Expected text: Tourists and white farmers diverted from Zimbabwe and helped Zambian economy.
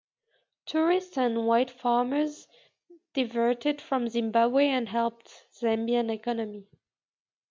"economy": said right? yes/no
yes